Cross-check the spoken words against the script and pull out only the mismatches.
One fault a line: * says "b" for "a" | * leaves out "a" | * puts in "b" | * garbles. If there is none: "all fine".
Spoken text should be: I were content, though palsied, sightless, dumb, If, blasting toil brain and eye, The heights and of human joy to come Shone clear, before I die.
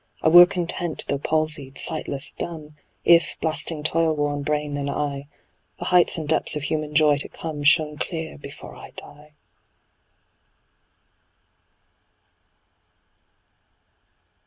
* puts in "worn"
* puts in "depths"